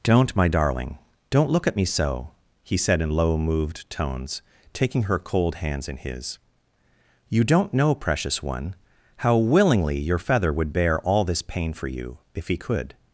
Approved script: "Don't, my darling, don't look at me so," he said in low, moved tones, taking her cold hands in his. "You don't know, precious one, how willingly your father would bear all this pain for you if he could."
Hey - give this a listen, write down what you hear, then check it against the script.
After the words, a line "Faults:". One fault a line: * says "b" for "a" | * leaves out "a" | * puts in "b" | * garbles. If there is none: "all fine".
"Don't, my darling, don't look at me so," he said in low, moved tones, taking her cold hands in his. "You don't know, precious one, how willingly your feather would bear all this pain for you if he could."
Faults:
* says "feather" for "father"